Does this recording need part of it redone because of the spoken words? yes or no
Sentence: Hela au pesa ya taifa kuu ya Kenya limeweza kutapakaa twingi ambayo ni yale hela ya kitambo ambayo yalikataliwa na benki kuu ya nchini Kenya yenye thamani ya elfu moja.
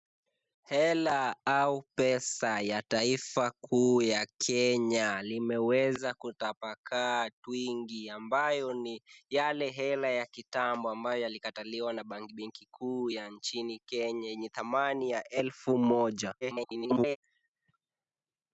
yes